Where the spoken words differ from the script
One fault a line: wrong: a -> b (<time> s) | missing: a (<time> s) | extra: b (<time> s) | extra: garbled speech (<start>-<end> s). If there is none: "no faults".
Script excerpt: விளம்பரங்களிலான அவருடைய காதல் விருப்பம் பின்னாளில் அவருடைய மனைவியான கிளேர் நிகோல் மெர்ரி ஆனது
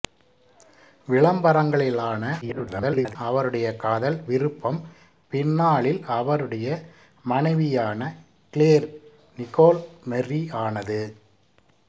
extra: garbled speech (2.4-3.2 s)